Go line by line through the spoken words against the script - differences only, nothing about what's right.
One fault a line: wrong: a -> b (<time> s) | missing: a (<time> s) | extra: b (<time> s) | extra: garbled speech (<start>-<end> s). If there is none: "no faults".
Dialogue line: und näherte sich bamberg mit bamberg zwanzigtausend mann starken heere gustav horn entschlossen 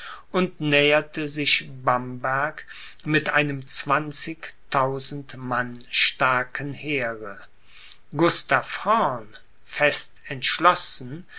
wrong: bamberg -> einem (3.3 s)
extra: fest (9.7 s)